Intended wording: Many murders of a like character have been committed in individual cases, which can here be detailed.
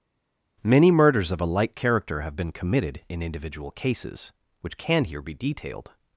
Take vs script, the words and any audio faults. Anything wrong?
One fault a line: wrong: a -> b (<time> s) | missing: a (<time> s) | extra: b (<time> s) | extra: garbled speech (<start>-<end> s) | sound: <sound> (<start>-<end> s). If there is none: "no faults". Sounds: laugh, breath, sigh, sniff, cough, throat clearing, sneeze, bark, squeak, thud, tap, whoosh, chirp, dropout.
no faults